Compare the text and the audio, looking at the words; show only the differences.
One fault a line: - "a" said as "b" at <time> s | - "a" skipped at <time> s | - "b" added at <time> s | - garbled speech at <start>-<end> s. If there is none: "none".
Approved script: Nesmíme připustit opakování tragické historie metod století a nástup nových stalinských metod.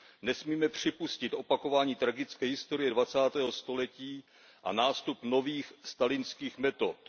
- "metod" said as "dvacátého" at 2.9 s